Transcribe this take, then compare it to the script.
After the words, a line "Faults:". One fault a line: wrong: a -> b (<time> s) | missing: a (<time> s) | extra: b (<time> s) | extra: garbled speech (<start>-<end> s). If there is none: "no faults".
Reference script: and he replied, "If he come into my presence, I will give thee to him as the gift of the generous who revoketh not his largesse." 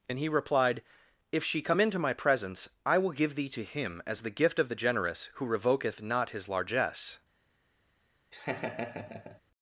and he replied, "If she come into my presence, I will give thee to him as the gift of the generous who revoketh not his largesse."
Faults:
wrong: he -> she (1.4 s)